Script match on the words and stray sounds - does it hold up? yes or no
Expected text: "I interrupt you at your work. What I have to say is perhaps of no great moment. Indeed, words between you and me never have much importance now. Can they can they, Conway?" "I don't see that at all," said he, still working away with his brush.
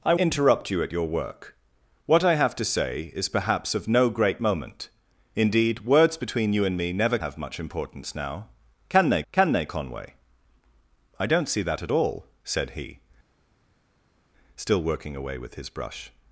yes